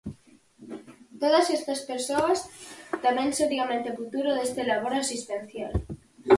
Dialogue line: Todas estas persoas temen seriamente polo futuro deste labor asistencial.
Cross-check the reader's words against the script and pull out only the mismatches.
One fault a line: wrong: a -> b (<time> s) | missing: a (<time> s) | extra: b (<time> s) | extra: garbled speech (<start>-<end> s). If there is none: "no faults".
missing: polo (3.9 s)